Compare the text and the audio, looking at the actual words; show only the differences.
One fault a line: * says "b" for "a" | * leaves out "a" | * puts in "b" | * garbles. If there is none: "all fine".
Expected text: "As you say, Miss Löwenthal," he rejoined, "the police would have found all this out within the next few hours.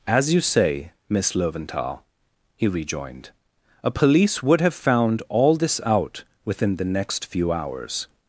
* says "a" for "the"